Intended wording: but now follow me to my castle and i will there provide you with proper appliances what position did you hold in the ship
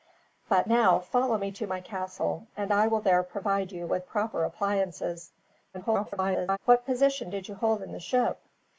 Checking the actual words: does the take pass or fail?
fail